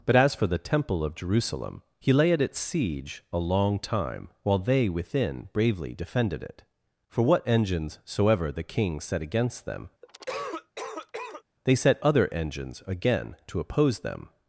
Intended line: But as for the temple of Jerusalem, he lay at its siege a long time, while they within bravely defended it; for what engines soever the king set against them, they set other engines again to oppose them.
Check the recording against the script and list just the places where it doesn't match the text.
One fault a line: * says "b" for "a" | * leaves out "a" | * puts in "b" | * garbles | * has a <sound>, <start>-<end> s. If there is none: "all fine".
* has a cough, 10.0-11.4 s